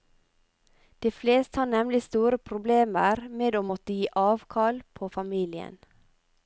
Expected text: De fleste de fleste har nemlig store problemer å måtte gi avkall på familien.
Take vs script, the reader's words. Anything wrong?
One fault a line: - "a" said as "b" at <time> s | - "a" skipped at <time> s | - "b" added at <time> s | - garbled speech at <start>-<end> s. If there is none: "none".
- "de fleste" skipped at 1.6 s
- "med" added at 3.4 s